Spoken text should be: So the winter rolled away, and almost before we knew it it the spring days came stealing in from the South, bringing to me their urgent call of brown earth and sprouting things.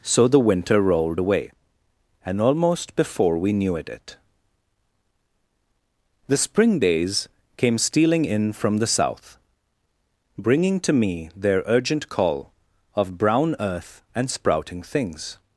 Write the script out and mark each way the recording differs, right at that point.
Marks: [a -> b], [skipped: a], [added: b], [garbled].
So the winter rolled away, and almost before we knew it it the spring days came stealing in from the South, bringing to me their urgent call of brown earth and sprouting things.